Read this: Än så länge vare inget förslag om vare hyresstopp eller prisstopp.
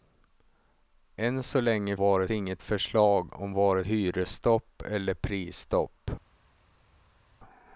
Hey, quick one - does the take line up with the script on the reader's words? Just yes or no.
yes